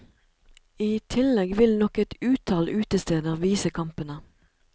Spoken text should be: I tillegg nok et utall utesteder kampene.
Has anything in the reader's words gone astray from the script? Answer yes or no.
yes